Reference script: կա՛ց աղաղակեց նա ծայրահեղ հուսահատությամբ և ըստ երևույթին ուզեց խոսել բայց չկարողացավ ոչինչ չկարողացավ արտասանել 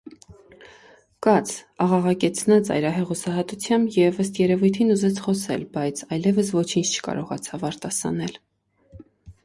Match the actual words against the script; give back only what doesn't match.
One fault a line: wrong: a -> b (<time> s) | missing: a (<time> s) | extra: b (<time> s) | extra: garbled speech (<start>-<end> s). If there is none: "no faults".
wrong: չկարողացավ -> այլևս (6.2 s)